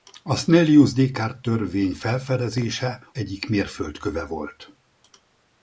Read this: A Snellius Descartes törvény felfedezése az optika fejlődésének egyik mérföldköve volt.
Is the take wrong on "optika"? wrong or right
wrong